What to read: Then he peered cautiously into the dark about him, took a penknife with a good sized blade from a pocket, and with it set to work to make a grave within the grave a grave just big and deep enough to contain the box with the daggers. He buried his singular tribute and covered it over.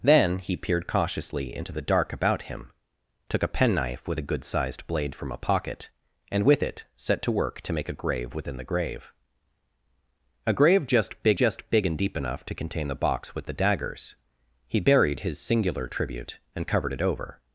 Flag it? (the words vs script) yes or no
yes